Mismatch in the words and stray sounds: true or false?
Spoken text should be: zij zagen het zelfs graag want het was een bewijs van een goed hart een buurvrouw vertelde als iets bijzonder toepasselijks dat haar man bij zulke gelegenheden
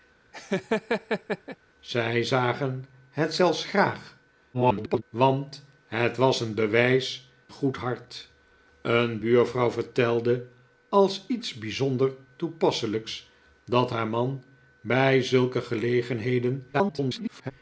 true